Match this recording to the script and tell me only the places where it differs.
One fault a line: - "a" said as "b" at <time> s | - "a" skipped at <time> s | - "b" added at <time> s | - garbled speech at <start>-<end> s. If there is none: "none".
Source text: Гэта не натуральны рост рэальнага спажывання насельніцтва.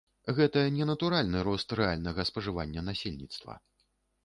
none